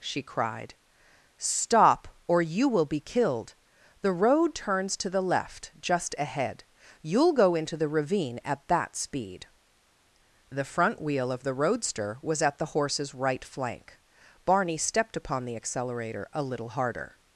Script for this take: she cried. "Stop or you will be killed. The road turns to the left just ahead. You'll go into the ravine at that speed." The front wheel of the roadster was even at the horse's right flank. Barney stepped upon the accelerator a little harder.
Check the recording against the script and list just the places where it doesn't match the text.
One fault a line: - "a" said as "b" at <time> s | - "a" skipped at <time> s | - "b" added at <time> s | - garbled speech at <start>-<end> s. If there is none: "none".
- "even" skipped at 12.4 s